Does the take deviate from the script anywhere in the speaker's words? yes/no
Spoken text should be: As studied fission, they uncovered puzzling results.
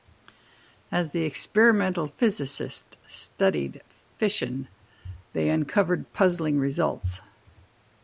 yes